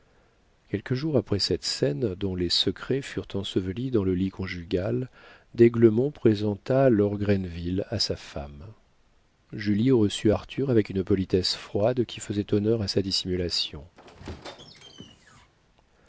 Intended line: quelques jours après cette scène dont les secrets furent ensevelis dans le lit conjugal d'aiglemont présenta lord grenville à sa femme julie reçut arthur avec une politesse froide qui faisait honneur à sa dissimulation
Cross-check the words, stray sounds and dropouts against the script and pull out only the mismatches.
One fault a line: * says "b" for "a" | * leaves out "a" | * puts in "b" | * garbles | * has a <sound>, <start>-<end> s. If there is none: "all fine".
* has a squeak, 14.0-15.5 s